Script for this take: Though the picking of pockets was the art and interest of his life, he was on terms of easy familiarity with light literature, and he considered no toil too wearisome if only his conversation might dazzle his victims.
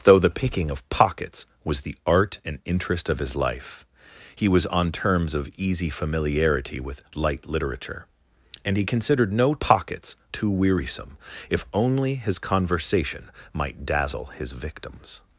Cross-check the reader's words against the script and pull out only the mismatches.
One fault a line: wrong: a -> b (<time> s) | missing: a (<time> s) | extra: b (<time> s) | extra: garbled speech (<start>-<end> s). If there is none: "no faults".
wrong: toil -> pockets (9.6 s)